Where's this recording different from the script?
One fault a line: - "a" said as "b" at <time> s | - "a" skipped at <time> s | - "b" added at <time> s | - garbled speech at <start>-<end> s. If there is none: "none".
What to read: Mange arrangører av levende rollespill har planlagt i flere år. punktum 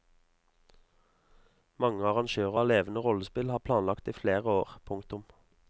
none